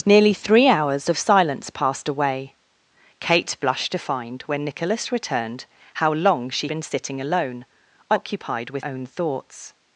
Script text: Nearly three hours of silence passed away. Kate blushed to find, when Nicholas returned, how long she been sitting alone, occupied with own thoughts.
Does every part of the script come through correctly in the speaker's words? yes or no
yes